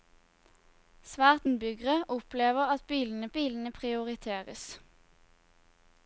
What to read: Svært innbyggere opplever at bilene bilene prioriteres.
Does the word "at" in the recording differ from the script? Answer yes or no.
no